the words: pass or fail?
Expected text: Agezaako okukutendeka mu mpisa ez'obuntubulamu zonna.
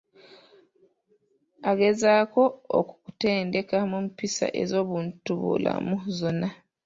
pass